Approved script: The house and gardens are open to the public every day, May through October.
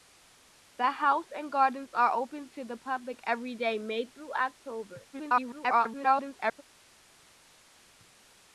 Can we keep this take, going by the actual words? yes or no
no